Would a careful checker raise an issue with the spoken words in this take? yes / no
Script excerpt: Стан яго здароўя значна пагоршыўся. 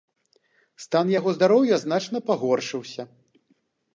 no